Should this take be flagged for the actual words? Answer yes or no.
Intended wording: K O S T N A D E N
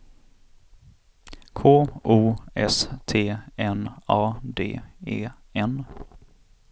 no